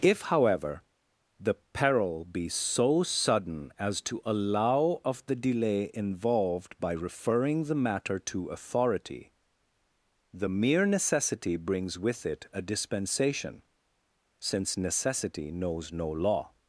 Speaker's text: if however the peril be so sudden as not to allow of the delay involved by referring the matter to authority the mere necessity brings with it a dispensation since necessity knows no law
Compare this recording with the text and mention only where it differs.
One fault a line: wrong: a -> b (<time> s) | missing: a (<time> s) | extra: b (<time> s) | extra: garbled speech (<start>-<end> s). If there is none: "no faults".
missing: not (4.0 s)